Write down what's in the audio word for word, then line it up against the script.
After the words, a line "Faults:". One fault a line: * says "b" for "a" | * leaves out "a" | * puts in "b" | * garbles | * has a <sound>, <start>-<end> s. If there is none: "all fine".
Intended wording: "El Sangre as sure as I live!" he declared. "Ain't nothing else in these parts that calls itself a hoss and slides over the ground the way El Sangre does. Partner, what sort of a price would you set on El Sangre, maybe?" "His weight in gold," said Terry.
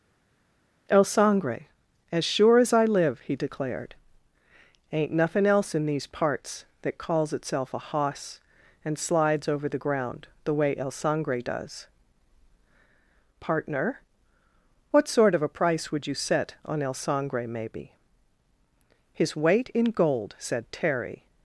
"El Sangre as sure as I live!" he declared. "Ain't nothing else in these parts that calls itself a hoss and slides over the ground the way El Sangre does. Partner, what sort of a price would you set on El Sangre, maybe?" "His weight in gold," said Terry.
Faults:
all fine